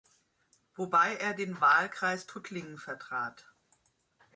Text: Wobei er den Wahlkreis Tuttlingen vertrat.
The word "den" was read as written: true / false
true